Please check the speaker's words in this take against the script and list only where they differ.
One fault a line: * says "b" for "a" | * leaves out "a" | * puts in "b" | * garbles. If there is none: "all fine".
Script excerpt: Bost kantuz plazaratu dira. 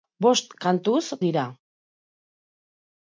* leaves out "plazaratu"